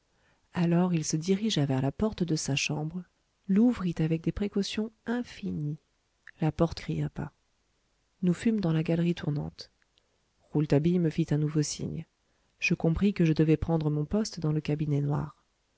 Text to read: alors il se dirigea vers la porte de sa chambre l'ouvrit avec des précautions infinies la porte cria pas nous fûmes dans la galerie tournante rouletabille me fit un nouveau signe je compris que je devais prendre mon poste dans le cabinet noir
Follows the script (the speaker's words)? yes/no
yes